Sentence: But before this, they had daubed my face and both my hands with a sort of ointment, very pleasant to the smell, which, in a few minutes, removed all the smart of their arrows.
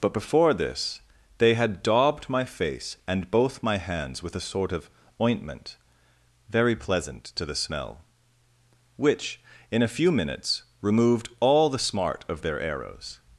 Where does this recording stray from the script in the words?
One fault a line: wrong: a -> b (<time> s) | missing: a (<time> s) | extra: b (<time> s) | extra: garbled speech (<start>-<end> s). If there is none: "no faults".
no faults